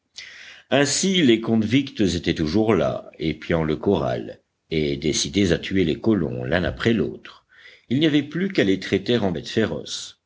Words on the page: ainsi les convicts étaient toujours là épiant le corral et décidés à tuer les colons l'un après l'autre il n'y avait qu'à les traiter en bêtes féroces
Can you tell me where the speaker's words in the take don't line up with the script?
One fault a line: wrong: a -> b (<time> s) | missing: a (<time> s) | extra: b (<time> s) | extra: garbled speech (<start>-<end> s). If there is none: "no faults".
extra: plus (8.2 s)